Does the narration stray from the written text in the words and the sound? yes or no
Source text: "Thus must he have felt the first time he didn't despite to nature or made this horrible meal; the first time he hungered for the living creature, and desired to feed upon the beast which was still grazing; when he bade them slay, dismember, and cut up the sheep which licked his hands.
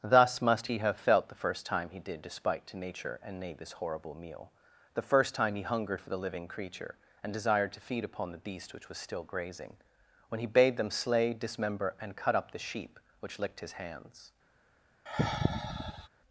yes